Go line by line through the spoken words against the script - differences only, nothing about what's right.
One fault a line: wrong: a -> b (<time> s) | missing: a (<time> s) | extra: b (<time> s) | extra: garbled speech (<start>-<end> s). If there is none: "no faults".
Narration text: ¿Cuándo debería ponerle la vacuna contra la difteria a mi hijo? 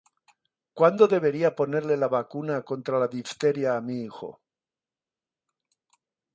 no faults